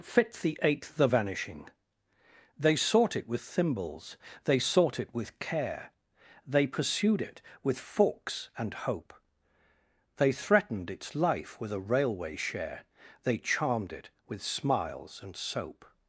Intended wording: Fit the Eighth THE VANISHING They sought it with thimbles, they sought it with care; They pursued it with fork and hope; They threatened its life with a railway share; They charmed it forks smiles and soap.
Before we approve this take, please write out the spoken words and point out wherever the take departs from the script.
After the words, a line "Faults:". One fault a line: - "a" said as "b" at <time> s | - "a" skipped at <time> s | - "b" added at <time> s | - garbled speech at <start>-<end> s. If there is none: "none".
Fit the Eighth THE VANISHING They sought it with thimbles, they sought it with care; They pursued it with forks and hope; They threatened its life with a railway share; They charmed it with smiles and soap.
Faults:
- "fork" said as "forks" at 7.8 s
- "forks" said as "with" at 14.3 s